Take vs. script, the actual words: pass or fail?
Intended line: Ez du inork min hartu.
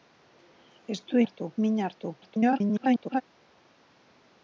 fail